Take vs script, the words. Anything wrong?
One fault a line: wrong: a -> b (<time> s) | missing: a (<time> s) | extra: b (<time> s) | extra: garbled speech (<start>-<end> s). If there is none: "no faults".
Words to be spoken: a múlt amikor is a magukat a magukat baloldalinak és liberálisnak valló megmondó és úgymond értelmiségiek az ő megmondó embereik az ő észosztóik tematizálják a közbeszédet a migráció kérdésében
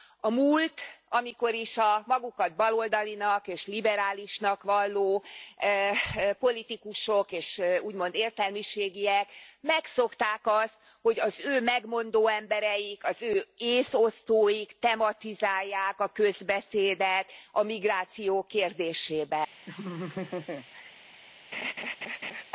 missing: a magukat (2.5 s)
wrong: megmondó -> politikusok (6.4 s)
extra: megszokták azt hogy (9.6 s)